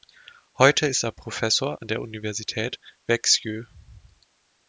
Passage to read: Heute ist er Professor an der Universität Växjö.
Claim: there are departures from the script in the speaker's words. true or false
false